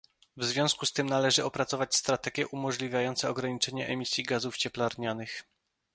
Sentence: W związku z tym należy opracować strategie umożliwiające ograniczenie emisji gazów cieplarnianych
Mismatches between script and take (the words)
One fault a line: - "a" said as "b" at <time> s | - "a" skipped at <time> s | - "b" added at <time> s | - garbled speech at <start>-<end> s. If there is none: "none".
none